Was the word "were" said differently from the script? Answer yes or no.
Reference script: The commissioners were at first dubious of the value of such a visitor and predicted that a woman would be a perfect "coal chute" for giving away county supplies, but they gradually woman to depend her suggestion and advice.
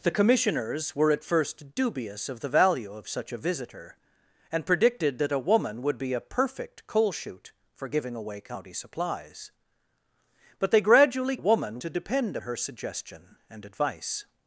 no